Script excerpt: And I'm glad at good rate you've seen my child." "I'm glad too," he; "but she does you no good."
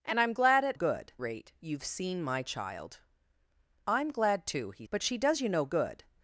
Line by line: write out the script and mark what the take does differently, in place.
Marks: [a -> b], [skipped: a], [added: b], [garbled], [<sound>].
And I'm glad at good rate you've seen my child." "I'm glad too," he; "but she does you no good."